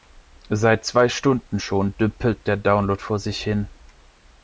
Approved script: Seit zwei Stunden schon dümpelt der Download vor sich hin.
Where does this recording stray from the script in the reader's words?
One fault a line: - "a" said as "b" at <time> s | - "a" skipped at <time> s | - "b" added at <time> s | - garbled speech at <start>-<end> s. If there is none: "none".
none